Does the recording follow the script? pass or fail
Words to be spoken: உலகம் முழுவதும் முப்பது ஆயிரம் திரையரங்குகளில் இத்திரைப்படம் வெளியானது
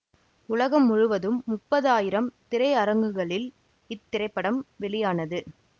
pass